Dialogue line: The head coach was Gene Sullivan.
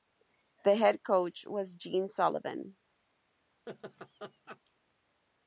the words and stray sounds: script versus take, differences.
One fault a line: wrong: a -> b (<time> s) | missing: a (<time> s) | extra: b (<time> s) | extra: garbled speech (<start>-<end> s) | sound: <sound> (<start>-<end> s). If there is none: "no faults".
sound: laugh (3.7-4.6 s)